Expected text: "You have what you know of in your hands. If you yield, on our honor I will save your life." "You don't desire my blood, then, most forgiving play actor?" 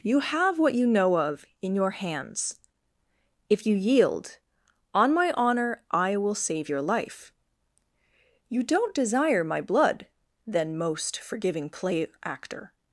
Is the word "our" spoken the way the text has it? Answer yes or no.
no